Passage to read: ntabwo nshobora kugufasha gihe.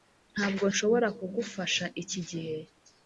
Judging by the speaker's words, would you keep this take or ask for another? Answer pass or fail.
fail